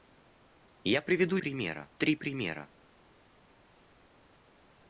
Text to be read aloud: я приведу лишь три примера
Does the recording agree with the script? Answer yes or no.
no